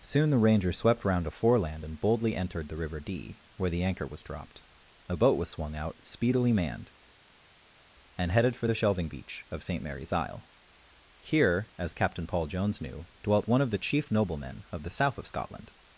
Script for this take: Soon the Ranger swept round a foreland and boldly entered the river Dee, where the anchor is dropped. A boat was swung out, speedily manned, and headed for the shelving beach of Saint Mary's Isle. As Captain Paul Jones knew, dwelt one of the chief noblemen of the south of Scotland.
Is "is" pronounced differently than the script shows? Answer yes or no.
yes